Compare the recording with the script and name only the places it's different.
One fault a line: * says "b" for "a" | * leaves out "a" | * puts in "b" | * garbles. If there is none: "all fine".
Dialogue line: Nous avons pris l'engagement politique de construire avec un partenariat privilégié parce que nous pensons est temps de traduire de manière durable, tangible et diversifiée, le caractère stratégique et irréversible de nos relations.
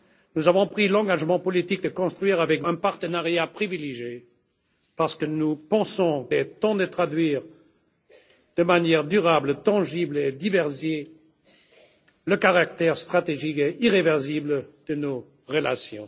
all fine